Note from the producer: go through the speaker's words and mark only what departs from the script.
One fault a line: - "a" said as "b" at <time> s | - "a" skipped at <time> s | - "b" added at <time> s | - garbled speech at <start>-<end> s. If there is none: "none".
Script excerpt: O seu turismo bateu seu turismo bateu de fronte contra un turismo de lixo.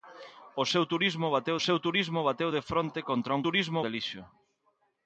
none